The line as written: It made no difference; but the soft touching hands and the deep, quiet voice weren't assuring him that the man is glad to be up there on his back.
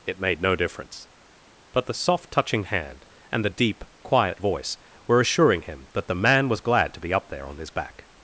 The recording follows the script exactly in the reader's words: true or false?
false